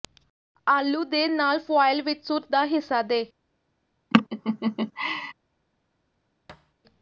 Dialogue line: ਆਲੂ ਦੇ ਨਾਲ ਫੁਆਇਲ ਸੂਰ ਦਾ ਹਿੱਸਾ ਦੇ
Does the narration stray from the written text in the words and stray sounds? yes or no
yes